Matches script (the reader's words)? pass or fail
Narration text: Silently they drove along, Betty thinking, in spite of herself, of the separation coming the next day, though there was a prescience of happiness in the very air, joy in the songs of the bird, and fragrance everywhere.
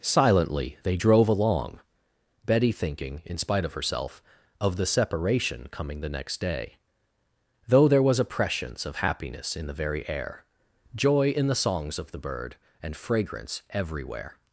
pass